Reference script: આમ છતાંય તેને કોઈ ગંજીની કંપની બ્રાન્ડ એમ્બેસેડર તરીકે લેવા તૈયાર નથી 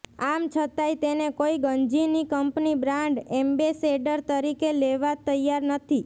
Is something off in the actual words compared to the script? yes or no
no